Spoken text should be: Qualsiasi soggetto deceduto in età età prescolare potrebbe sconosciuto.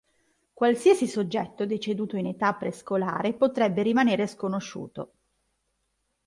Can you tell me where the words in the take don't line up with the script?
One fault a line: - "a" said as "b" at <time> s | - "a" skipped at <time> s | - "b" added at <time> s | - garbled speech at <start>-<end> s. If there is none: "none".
- "età" skipped at 2.5 s
- "rimanere" added at 3.8 s